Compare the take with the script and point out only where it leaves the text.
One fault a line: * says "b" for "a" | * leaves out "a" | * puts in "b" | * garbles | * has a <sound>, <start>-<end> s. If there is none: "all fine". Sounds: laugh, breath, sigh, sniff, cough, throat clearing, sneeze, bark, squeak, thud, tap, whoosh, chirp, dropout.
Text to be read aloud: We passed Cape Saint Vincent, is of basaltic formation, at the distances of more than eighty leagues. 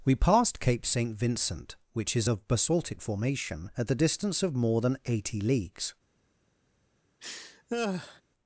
* puts in "which"
* says "distance" for "distances"
* has a laugh, 7.2-8.2 s